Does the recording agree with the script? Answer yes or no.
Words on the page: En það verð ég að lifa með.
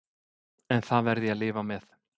yes